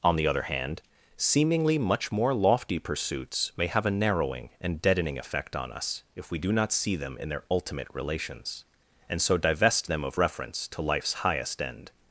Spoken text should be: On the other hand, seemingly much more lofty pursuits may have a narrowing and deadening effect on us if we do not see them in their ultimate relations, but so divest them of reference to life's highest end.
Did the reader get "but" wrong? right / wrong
wrong